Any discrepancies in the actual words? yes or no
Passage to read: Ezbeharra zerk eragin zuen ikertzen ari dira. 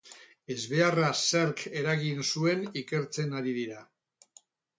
no